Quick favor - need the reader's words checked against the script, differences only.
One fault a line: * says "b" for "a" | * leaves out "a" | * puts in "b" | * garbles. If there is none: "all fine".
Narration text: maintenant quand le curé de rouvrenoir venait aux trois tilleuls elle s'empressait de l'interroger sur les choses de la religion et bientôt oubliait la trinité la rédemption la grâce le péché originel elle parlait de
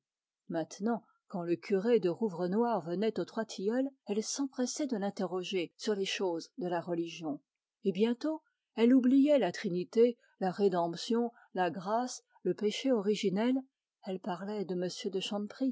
* puts in "elle"